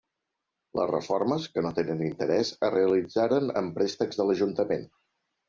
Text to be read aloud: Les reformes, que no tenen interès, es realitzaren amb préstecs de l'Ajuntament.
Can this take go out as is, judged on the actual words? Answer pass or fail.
pass